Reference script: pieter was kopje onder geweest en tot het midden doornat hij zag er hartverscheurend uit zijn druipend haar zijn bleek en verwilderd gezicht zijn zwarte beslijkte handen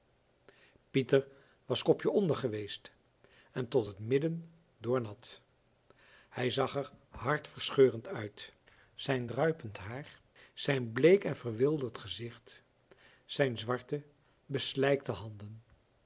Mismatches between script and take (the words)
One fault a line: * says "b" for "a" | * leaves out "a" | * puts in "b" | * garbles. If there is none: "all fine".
all fine